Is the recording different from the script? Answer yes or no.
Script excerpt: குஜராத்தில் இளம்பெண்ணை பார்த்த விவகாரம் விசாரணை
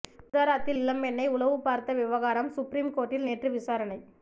yes